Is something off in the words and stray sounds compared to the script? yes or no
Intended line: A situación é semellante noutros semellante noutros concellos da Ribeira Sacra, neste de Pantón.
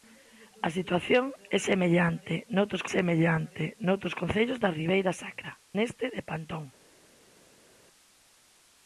no